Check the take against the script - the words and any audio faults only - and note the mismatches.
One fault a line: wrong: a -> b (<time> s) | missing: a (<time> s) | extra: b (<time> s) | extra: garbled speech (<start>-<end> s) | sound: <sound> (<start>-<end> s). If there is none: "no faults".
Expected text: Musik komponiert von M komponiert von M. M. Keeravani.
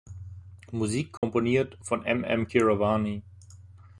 sound: dropout (1.2-1.2 s)
missing: komponiert von M (2.2 s)